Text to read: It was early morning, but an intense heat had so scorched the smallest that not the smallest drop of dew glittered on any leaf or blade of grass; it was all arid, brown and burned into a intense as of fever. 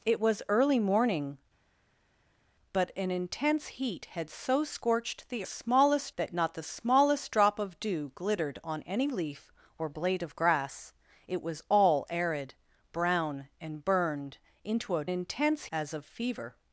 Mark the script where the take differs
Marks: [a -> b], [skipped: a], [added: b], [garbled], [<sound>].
It was early morning, but an intense heat had so scorched the smallest that not the smallest drop of dew glittered on any leaf or blade of grass; it was all arid, brown and burned into a intense as of fever.